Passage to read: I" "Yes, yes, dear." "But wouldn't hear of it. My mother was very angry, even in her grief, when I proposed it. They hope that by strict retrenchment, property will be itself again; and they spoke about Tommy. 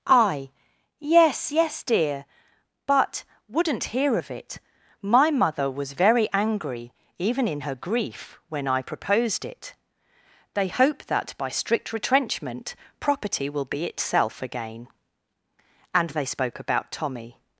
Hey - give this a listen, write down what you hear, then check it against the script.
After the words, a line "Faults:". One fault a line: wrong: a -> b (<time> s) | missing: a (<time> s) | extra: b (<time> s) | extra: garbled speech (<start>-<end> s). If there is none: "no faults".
I" "Yes, yes, dear." "But wouldn't hear of it. My mother was very angry, even in her grief, when I proposed it. They hope that by strict retrenchment, property will be itself again; and they spoke about Tommy.
Faults:
no faults